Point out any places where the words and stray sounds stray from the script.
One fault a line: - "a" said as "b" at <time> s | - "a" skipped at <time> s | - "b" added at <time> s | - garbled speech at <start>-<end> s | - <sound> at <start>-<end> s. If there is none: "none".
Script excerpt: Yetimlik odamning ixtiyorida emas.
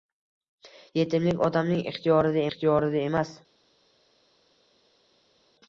- "ixtiyorida" added at 2.5 s